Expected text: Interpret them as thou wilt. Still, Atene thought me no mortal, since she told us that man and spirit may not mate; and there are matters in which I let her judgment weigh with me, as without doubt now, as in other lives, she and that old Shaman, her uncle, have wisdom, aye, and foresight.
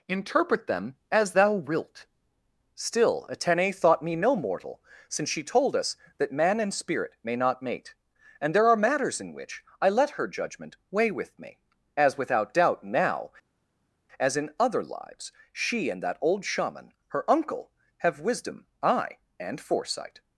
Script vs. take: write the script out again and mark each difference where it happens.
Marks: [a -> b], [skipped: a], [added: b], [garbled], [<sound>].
Interpret them as thou wilt. Still, Atene thought me no mortal, since she told us that man and spirit may not mate; and there are matters in which I let her judgment weigh with me, as without doubt now, as in other lives, she and that old Shaman, her uncle, have wisdom, aye, and foresight.